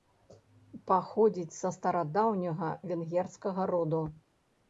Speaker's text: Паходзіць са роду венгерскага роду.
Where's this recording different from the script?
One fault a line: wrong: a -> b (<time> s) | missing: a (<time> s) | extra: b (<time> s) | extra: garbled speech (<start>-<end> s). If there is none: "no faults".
wrong: роду -> старадаўняга (1.8 s)